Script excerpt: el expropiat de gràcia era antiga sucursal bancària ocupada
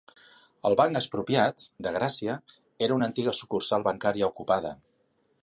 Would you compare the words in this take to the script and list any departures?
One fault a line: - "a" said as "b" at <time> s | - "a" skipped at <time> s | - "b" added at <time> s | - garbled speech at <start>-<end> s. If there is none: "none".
- "banc" added at 0.8 s
- "una" added at 3.0 s